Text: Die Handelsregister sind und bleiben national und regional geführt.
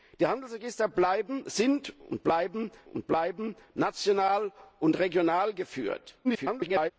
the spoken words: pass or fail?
fail